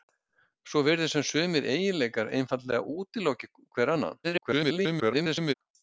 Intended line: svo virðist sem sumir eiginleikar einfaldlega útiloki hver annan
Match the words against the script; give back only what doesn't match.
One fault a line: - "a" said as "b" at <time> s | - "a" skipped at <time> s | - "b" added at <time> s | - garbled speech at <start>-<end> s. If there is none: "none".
- garbled speech at 4.2-5.5 s